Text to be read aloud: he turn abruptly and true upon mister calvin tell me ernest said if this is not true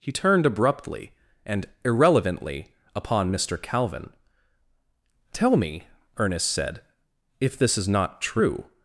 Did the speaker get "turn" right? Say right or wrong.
wrong